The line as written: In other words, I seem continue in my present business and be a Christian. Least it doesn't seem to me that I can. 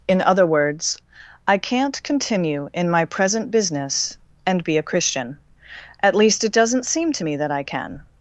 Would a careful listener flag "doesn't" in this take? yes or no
no